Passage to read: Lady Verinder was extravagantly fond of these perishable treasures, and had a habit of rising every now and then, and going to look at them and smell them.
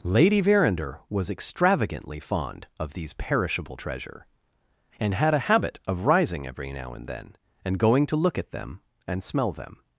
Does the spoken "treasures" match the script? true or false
false